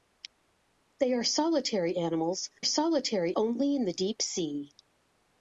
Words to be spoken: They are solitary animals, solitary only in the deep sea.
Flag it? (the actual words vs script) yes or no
no